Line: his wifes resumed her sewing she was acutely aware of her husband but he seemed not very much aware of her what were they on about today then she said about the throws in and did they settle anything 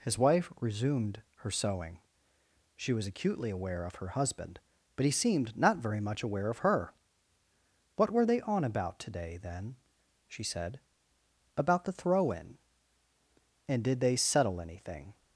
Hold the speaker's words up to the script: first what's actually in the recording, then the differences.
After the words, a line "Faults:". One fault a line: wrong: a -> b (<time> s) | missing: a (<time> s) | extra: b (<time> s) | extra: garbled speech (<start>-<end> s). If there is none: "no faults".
his wife resumed her sewing she was acutely aware of her husband but he seemed not very much aware of her what were they on about today then she said about the throw in and did they settle anything
Faults:
wrong: wifes -> wife (0.2 s)
wrong: throws -> throw (11.9 s)